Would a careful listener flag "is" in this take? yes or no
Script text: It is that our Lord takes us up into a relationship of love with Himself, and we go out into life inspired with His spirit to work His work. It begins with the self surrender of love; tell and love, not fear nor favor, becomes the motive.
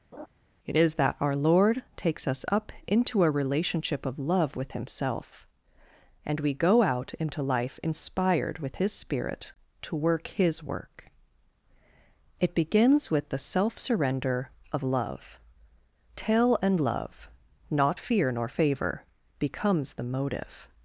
no